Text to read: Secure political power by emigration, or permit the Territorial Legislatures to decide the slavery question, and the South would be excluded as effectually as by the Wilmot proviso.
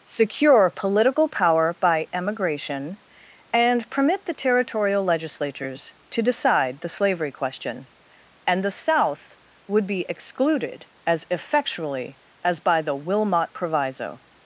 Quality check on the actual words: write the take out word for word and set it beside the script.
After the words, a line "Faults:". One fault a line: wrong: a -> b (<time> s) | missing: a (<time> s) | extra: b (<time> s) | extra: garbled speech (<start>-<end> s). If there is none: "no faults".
Secure political power by emigration, and permit the Territorial Legislatures to decide the slavery question, and the South would be excluded as effectually as by the Wilmot proviso.
Faults:
wrong: or -> and (3.5 s)